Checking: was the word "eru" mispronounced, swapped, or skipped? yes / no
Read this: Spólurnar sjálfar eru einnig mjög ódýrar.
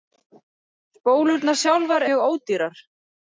yes